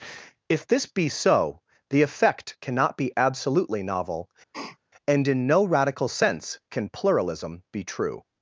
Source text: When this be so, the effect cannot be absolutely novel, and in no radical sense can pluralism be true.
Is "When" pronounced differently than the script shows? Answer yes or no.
yes